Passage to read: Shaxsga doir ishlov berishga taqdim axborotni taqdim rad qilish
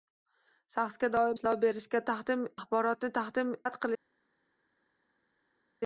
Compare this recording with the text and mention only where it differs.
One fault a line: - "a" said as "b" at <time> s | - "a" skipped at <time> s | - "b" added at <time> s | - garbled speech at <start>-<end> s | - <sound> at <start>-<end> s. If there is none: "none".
none